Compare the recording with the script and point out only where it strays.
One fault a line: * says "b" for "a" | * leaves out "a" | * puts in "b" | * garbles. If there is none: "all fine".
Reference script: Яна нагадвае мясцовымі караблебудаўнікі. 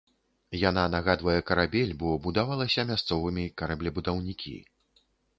* puts in "карабель бо будавалася"